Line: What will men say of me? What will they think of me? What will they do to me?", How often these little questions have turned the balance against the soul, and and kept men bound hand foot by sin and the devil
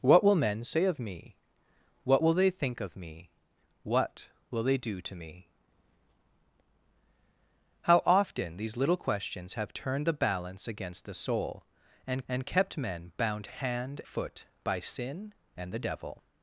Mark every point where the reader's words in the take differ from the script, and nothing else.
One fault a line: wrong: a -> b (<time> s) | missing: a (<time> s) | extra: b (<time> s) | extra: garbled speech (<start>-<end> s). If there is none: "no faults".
no faults